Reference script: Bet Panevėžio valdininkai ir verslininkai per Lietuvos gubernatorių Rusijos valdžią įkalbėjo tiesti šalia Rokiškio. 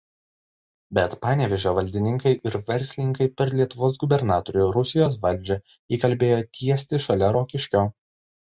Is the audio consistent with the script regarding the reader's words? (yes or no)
yes